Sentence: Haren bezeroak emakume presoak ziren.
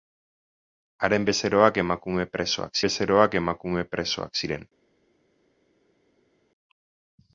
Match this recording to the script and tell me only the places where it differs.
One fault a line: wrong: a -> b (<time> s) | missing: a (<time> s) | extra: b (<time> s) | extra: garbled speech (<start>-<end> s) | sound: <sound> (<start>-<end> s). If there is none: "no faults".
extra: bezeroak emakume presoak (2.8 s)